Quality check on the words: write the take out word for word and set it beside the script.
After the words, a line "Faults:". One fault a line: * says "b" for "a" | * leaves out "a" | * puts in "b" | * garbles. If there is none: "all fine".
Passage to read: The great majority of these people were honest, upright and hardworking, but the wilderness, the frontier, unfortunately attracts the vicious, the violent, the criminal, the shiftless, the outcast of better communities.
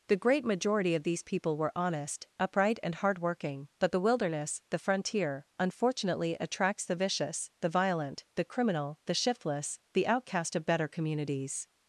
The great majority of these people were honest, upright and hardworking, but the wilderness, the frontier, unfortunately attracts the vicious, the violent, the criminal, the shiftless, the outcast of better communities.
Faults:
all fine